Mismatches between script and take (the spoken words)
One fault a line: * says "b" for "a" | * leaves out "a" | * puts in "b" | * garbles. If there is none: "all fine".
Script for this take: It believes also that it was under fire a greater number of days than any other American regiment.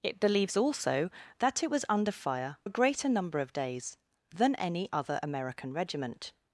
all fine